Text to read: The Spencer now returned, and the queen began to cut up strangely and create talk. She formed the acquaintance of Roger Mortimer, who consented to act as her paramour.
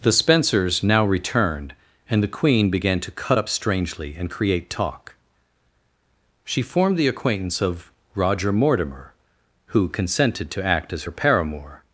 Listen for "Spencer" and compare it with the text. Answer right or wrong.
wrong